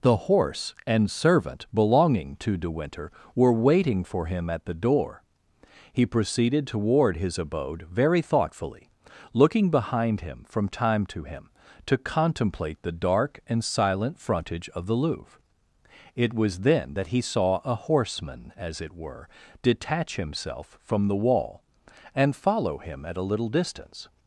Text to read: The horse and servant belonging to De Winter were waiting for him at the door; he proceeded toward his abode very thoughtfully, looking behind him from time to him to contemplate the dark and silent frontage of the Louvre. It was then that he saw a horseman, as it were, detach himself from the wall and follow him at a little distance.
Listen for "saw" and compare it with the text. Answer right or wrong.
right